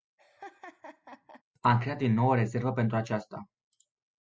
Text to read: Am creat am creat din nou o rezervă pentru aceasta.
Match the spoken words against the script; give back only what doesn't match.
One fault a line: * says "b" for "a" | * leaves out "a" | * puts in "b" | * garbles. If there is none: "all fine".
* leaves out "am creat"